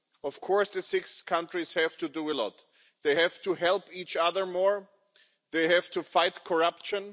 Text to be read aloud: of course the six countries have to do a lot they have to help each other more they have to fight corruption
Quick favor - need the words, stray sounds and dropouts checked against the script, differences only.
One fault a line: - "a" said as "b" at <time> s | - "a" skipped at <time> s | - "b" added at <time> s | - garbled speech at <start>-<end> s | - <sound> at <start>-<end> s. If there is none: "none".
none